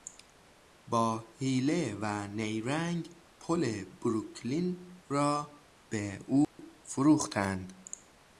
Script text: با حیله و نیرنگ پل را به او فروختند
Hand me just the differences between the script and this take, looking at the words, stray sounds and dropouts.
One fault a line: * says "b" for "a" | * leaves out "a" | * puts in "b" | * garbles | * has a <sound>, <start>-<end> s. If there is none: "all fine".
* puts in "بروکلین"
* has a dropout, 6.4-6.6 s